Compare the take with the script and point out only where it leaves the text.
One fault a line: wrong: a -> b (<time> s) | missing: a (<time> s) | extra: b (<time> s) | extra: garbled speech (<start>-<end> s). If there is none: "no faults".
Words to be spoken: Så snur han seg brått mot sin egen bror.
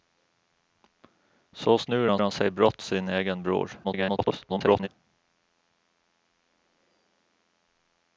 extra: han (2.2 s)
missing: mot (2.8 s)
extra: garbled speech (3.8-4.9 s)